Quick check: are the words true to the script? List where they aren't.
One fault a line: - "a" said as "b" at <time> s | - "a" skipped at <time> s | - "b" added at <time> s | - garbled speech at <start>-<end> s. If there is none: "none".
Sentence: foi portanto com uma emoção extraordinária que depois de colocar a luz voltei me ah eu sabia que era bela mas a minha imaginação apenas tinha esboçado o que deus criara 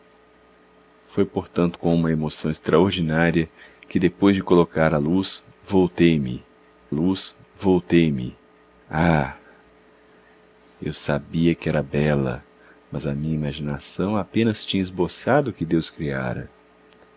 - "luz voltei me" added at 6.9 s